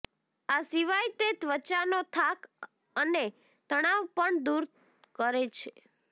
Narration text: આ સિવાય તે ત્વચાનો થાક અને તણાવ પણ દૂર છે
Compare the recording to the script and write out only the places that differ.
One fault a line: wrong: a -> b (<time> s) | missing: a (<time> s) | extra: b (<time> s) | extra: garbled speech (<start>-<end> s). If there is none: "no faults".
extra: કરે (5.2 s)